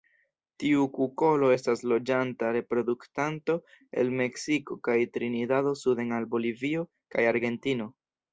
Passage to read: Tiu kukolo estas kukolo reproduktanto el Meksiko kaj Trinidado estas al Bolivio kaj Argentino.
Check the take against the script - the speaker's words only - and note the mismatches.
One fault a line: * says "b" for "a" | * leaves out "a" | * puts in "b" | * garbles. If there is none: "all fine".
* says "loĝanta" for "kukolo"
* says "suden" for "estas"